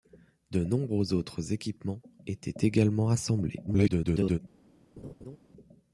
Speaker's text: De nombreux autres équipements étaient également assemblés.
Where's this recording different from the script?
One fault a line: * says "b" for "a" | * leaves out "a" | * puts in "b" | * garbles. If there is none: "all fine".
* garbles